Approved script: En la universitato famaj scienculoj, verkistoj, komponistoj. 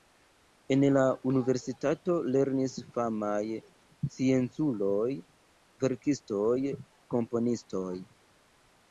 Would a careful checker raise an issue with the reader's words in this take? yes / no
yes